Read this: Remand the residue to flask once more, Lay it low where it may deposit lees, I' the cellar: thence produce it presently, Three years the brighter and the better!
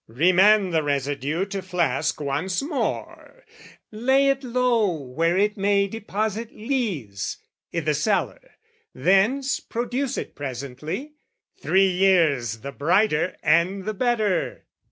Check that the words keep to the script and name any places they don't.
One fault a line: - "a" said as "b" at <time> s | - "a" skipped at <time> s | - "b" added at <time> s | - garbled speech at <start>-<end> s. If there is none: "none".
none